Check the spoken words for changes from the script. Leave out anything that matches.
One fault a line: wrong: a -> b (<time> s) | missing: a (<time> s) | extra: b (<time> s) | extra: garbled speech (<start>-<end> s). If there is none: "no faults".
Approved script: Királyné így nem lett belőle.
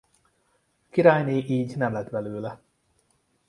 no faults